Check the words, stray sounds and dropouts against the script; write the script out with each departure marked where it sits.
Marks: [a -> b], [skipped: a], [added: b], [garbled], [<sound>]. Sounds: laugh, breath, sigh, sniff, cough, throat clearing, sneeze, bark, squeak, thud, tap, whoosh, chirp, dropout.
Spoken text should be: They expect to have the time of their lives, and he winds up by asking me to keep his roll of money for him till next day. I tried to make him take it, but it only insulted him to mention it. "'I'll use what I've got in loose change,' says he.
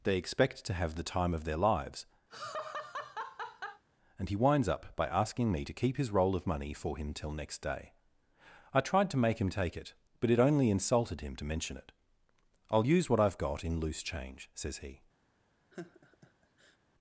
They expect to have the time of their lives, [laugh] and he winds up by asking me to keep his roll of money for him till next day. I tried to make him take it, but it only insulted him to mention it. "'I'll use what I've got in loose change,' says he. [laugh]